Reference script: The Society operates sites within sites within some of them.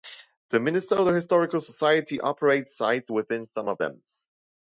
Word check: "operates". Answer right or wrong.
right